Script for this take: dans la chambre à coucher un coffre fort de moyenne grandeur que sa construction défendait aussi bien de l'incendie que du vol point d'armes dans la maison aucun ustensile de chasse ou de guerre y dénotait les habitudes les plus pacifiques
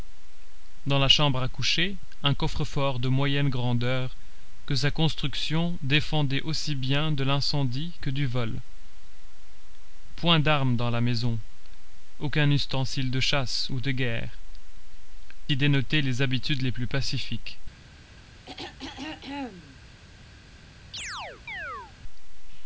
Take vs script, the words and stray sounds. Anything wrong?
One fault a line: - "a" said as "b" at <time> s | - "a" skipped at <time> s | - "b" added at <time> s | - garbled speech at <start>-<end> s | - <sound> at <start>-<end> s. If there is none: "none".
- throat clearing at 18.5-19.8 s
- chirp at 20.9-21.9 s